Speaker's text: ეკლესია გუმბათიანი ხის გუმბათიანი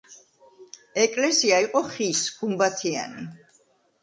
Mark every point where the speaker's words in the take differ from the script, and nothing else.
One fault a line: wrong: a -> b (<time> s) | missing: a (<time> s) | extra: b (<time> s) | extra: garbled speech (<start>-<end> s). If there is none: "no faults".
wrong: გუმბათიანი -> იყო (1.6 s)